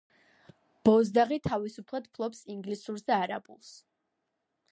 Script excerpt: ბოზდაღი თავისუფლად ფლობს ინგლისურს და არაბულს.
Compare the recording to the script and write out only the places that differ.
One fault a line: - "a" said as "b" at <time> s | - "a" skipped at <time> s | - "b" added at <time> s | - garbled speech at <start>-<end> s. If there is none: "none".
none